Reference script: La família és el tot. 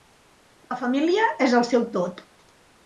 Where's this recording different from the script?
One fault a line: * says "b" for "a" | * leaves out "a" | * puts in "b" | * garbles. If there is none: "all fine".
* puts in "seu"